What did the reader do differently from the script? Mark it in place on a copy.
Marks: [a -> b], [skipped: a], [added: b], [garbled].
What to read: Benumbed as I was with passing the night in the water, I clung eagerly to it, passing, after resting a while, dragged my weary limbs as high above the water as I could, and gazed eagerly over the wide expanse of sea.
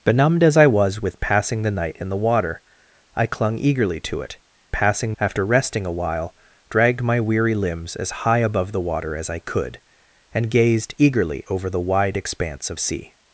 Benumbed as I was with passing the night in the water, I clung eagerly to it, passing, after resting a while, dragged my weary limbs as high above the water as I could, and gazed eagerly over the wide expanse of sea.